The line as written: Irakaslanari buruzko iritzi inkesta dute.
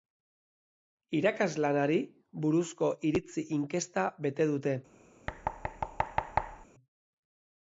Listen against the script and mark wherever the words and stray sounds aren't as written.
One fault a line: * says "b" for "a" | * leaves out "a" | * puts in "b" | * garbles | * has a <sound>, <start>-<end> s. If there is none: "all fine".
* puts in "bete"
* has a thud, 5.3-6.7 s